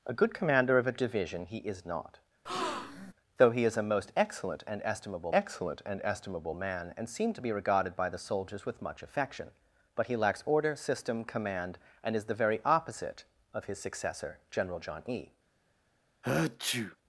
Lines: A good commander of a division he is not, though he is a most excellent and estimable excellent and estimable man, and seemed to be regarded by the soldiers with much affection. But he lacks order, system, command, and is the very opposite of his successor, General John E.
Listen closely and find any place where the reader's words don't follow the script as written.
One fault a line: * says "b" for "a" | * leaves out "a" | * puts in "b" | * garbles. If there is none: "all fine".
all fine